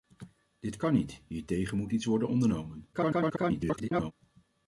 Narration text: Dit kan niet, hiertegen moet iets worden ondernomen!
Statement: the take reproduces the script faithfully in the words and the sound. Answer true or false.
false